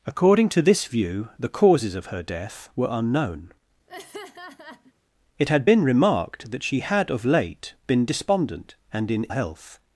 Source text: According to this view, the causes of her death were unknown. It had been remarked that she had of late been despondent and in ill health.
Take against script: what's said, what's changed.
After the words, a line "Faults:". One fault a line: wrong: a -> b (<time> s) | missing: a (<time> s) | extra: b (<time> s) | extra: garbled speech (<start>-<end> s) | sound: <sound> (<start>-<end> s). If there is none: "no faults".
According to this view, the causes of her death were unknown. It had been remarked that she had of late been despondent and in health.
Faults:
sound: laugh (3.9-4.9 s)
missing: ill (9.2 s)